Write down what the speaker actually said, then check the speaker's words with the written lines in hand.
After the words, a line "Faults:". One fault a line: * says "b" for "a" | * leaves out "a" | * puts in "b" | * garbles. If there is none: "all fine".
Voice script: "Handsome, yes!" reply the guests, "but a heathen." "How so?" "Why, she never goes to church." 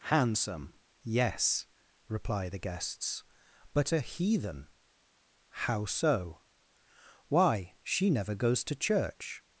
"Handsome, yes!" reply the guests, "but a heathen." "How so?" "Why, she never goes to church."
Faults:
all fine